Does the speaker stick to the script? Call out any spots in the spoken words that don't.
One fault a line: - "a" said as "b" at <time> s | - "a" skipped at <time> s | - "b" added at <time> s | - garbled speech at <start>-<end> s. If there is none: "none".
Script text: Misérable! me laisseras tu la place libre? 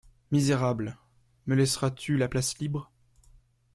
none